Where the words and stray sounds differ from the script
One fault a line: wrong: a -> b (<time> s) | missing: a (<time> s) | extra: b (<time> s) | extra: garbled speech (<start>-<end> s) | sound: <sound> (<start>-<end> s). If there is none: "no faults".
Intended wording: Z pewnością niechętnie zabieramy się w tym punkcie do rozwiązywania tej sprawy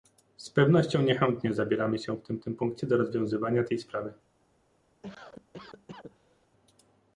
extra: tym (2.4 s)
sound: cough (5.0-6.5 s)